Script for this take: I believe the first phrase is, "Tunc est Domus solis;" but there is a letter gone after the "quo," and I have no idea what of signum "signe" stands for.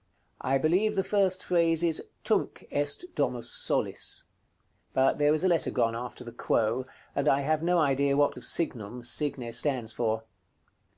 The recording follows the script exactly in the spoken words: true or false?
true